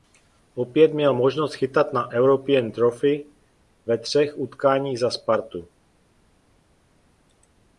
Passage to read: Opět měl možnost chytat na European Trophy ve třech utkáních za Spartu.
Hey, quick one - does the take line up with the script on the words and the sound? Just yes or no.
yes